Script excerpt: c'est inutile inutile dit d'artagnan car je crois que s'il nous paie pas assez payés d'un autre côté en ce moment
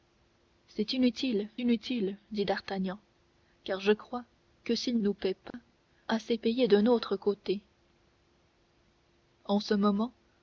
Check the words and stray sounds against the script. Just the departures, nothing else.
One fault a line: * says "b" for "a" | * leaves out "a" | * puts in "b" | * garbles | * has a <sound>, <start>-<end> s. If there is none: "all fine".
* has a dropout, 5.5-5.5 s